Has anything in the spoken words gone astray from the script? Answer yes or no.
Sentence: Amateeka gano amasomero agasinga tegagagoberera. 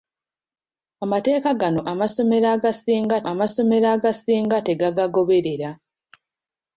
yes